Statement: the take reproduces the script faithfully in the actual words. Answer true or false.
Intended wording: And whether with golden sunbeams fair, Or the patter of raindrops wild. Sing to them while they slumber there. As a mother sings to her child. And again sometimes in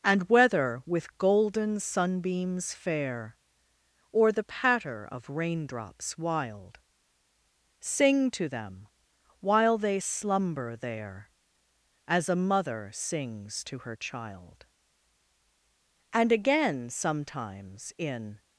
true